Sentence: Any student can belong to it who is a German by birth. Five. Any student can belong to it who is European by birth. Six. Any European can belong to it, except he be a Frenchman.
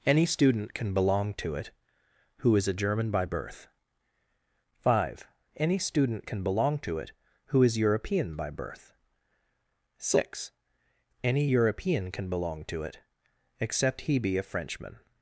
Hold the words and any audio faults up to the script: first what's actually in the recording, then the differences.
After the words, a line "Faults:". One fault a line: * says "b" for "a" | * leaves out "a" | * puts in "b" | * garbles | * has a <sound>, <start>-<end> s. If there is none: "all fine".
Any student can belong to it who is a German by birth. Five. Any student can belong to it who is European by birth. Six. Any European can belong to it, except he be a Frenchman.
Faults:
all fine